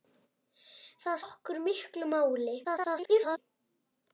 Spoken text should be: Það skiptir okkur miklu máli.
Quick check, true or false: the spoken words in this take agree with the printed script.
false